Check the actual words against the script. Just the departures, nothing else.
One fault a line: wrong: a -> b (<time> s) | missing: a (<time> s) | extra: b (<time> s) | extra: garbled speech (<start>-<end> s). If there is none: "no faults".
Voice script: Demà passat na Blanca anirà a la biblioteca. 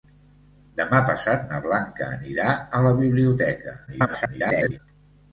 extra: garbled speech (3.9-4.8 s)